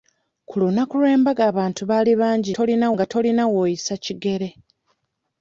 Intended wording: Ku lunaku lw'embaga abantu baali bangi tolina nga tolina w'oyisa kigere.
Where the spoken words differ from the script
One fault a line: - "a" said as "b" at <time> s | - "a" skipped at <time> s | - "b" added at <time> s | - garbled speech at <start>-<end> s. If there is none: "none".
none